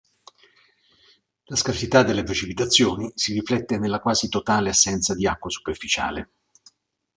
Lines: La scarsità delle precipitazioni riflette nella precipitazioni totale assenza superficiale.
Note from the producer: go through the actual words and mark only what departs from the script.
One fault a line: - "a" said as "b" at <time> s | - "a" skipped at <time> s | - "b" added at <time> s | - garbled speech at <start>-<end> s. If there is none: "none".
- "si" added at 3.1 s
- "precipitazioni" said as "quasi" at 4.0 s
- "di acqua" added at 5.1 s